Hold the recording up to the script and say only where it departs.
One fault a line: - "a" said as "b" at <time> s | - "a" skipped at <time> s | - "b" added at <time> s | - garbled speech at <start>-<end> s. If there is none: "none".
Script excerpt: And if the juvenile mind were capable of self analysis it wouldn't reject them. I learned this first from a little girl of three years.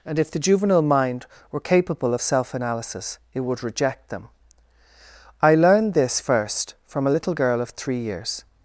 - "wouldn't" said as "would" at 3.4 s